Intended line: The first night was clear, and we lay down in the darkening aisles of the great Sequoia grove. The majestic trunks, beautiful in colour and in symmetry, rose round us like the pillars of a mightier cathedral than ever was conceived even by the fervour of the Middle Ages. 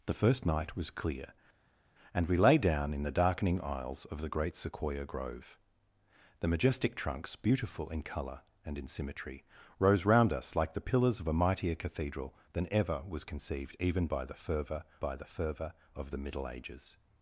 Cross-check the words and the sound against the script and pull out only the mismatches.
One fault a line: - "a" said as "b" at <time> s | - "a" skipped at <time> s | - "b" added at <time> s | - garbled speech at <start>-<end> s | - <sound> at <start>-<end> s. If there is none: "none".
- "by the fervour" added at 15.0 s